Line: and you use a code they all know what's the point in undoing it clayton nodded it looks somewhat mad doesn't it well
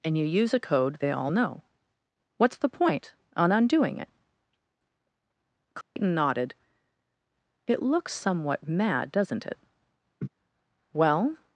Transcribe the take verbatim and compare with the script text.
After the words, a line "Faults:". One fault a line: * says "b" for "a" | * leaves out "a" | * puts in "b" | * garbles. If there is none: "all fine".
and you use a code they all know what's the point on undoing it clayton nodded it looks somewhat mad doesn't it well
Faults:
* says "on" for "in"